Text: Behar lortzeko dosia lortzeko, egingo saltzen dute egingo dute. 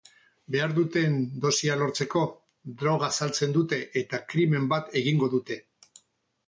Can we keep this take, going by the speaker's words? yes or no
no